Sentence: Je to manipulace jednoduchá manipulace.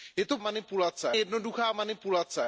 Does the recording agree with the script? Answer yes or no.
yes